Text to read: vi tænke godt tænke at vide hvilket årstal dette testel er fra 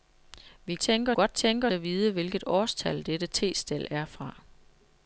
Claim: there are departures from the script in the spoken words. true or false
false